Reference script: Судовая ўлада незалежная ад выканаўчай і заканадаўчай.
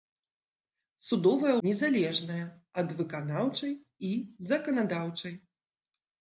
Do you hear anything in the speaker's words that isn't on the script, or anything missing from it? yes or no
yes